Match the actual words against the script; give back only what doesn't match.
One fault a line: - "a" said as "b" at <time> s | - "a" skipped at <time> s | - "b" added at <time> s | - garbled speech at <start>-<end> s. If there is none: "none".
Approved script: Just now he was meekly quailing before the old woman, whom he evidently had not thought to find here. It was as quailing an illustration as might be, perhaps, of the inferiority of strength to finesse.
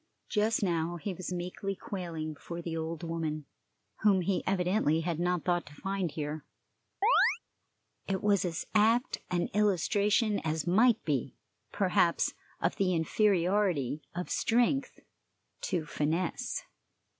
- "quailing" said as "apt" at 8.7 s